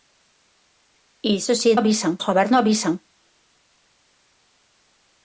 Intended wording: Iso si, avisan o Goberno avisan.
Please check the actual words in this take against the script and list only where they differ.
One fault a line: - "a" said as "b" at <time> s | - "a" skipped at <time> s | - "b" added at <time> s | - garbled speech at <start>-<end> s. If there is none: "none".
none